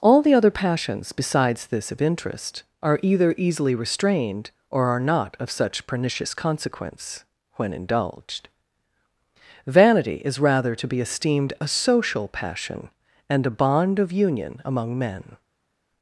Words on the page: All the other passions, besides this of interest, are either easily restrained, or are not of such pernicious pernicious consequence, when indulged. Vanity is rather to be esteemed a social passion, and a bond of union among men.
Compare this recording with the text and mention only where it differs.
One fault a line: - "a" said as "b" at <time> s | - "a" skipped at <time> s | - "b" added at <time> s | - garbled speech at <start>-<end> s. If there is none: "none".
- "pernicious" skipped at 6.3 s